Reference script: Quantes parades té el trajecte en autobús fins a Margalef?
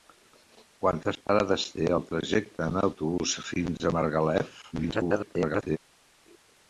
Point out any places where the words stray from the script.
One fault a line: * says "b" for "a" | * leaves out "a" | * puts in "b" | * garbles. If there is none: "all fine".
* garbles